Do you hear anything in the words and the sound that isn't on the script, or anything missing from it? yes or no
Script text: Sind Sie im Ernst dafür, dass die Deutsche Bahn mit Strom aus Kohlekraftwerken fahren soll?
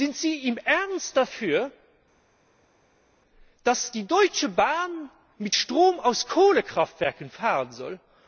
no